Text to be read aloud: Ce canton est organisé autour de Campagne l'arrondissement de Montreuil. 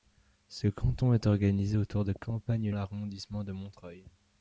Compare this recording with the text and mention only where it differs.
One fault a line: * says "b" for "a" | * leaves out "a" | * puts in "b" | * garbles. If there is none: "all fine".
all fine